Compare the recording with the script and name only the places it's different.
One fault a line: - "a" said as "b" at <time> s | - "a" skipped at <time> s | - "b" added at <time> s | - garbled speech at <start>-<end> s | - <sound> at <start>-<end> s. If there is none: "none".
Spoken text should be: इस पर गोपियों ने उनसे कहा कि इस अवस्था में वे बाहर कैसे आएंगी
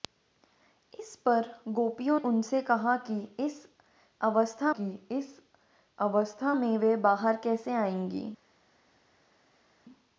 - "ने" skipped at 2.2 s
- "कि इस अवस्था" added at 4.8 s